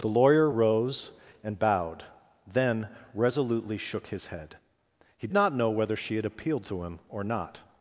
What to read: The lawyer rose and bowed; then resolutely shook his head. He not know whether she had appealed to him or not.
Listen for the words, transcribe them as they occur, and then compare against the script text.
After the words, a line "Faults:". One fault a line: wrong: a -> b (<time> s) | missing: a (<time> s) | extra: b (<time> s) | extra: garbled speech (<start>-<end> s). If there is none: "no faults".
The lawyer rose and bowed; then resolutely shook his head. He not know whether she had appealed to him or not.
Faults:
no faults